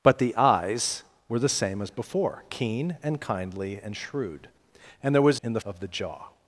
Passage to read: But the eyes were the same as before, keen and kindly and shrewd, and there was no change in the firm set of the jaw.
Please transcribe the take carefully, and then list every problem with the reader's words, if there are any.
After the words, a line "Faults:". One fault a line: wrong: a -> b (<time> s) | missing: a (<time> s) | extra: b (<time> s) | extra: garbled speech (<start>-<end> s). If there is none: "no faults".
But the eyes were the same as before, keen and kindly and shrewd, and there was in the of the jaw.
Faults:
missing: no change (5.4 s)
missing: firm set (5.6 s)